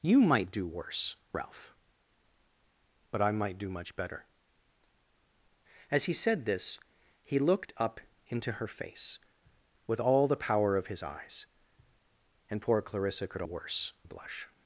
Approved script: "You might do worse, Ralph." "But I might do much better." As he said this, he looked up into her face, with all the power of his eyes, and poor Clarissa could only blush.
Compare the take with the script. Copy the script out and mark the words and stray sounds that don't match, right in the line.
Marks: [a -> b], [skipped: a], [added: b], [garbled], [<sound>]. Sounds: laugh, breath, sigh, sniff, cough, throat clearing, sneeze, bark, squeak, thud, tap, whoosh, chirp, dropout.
"You might do worse, Ralph." "But I might do much better." As he said this, he looked up into her face, with all the power of his eyes, and poor Clarissa could [only -> worse] blush.